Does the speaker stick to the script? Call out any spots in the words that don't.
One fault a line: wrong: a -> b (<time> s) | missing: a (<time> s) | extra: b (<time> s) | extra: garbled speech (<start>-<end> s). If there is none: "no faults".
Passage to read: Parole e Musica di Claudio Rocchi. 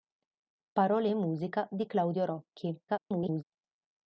extra: garbled speech (2.9-3.4 s)